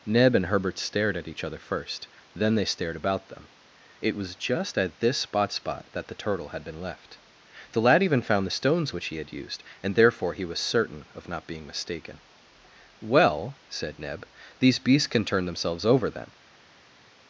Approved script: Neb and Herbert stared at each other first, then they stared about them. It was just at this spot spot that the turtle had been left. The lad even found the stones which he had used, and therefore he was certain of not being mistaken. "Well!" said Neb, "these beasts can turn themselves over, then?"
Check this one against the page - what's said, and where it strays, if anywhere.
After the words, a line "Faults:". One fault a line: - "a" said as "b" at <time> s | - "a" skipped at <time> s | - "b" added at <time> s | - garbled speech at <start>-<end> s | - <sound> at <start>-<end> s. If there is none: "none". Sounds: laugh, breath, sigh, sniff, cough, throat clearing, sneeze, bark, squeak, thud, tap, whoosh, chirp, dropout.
Neb and Herbert stared at each other first, then they stared about them. It was just at this spot spot that the turtle had been left. The lad even found the stones which he had used, and therefore he was certain of not being mistaken. "Well!" said Neb, "these beasts can turn themselves over, then?"
Faults:
none